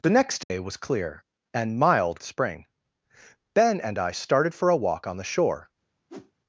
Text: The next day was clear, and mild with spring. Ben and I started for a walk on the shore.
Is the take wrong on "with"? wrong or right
wrong